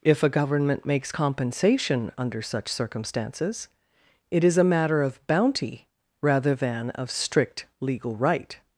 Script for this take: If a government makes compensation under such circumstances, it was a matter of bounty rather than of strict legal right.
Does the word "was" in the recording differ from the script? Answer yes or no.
yes